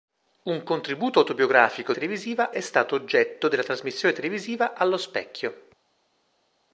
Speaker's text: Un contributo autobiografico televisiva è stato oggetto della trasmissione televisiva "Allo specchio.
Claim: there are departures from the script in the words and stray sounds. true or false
false